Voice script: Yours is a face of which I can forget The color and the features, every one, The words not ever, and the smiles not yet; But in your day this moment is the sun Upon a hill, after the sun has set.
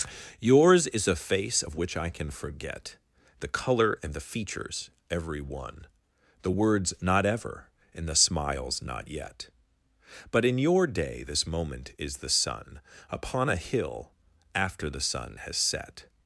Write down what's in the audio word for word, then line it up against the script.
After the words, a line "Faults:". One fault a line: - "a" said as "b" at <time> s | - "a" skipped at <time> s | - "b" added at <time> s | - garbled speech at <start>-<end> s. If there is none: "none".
Yours is a face of which I can forget The color and the features, every one, The words not ever, and the smiles not yet; But in your day this moment is the sun Upon a hill, after the sun has set.
Faults:
none